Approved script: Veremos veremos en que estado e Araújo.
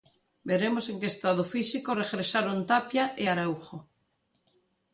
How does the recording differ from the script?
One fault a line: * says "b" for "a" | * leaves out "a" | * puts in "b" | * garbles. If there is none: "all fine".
* leaves out "veremos"
* puts in "físico regresaron Tapia"